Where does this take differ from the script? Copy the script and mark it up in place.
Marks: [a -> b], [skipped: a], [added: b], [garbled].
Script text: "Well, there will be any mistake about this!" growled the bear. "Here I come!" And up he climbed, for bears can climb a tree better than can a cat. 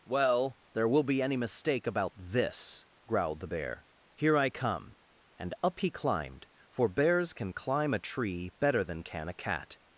"Well, there will be any mistake about this!" growled the bear. "Here I come!" And up he climbed, for bears can climb a tree better than can a cat.